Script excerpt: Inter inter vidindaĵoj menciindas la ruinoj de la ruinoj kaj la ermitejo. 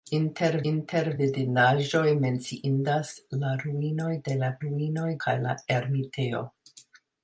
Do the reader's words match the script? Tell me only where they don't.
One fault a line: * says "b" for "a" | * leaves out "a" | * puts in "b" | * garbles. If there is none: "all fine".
all fine